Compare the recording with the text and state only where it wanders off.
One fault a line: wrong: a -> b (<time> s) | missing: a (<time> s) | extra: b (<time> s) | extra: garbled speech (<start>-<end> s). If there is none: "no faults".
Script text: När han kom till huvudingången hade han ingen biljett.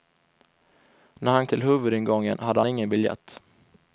missing: kom (1.5 s)
missing: han (2.6 s)